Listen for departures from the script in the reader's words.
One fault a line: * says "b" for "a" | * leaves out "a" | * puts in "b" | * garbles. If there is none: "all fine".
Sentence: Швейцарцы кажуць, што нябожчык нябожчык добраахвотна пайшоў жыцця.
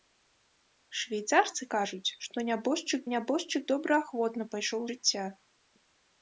all fine